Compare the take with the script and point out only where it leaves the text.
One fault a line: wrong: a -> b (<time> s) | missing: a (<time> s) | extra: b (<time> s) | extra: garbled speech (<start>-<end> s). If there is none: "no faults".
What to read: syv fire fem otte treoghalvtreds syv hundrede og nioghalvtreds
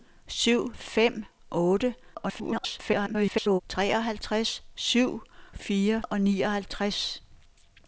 missing: fire (0.7 s)
extra: garbled speech (2.1-3.6 s)
wrong: hundrede -> fire (5.6 s)